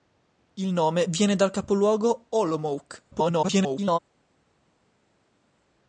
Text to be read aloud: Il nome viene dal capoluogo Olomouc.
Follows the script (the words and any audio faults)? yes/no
no